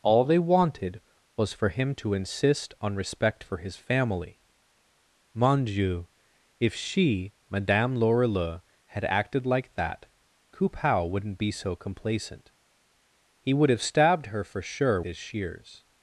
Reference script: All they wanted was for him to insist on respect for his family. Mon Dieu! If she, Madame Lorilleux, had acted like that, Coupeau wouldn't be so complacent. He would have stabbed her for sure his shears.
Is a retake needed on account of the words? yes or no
no